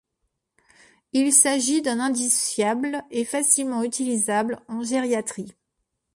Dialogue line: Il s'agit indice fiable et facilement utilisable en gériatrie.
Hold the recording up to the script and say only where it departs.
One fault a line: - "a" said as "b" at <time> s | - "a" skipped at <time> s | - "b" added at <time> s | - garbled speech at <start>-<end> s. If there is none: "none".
- "d'un" added at 1.8 s